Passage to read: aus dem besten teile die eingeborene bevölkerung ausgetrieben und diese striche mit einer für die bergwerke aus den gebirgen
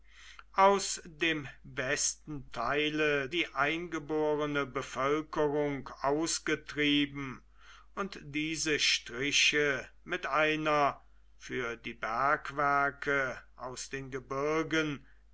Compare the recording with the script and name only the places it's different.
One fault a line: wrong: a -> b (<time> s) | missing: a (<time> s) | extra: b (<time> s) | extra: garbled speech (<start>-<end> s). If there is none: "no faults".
no faults